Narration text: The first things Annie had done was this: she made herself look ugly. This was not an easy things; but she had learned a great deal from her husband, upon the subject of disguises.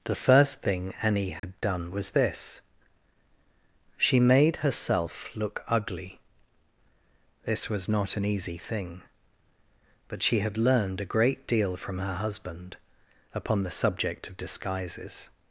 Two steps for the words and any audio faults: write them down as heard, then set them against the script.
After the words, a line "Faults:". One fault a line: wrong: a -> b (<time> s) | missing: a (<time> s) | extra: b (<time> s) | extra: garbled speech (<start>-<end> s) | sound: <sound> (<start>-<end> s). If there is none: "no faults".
The first thing Annie had done was this: she made herself look ugly. This was not an easy thing; but she had learned a great deal from her husband, upon the subject of disguises.
Faults:
wrong: things -> thing (0.6 s)
sound: dropout (1.4-1.4 s)
wrong: things -> thing (8.6 s)